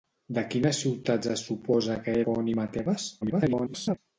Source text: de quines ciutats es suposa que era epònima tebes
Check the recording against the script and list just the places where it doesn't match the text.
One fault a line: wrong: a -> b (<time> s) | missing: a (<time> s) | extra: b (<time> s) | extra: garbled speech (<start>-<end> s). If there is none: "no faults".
missing: era (2.2 s)
extra: garbled speech (3.2-4.0 s)